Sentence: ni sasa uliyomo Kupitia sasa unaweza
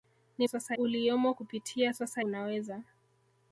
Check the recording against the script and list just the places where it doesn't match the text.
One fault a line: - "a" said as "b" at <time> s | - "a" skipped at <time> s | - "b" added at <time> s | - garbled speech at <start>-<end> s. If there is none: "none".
none